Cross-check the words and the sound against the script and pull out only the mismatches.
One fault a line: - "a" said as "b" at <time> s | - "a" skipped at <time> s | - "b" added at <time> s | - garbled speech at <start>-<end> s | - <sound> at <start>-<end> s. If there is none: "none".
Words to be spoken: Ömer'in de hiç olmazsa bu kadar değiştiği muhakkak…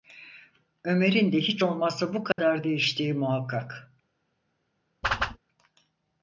- dropout at 2.3-2.4 s
- whoosh at 5.0-5.4 s